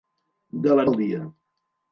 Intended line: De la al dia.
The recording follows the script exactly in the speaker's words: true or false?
true